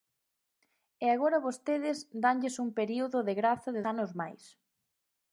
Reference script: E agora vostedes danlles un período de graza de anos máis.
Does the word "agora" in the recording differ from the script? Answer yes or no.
no